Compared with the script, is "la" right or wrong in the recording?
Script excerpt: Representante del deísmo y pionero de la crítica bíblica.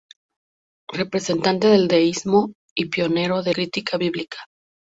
wrong